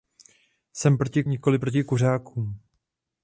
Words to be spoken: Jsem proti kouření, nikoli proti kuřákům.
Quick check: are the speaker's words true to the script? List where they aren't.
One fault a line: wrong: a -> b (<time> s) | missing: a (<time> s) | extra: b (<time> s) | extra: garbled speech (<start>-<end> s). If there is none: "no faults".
missing: kouření (1.2 s)